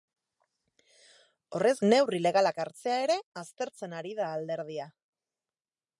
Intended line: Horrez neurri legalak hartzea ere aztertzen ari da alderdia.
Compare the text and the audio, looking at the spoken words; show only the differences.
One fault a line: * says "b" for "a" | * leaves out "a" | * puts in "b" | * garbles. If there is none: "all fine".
all fine